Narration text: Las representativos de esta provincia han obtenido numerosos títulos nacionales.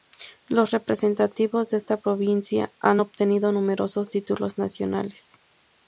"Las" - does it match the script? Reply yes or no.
no